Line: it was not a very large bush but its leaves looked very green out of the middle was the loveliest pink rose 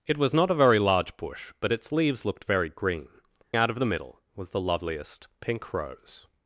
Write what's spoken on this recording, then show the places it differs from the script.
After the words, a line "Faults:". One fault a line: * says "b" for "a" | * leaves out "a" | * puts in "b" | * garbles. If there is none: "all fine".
it was not a very large bush but its leaves looked very green out of the middle was the loveliest pink rose
Faults:
all fine